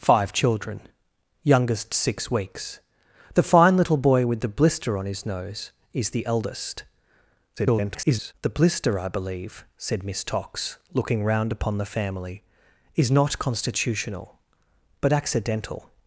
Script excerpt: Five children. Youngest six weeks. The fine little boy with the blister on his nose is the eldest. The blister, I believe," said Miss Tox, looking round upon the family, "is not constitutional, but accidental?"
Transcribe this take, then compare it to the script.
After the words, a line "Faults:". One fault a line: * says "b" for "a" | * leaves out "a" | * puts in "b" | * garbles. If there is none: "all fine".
Five children. Youngest six weeks. The fine little boy with the blister on his nose is the eldest. [garbled] The blister, I believe," said Miss Tox, looking round upon the family, "is not constitutional, but accidental?"
Faults:
* garbles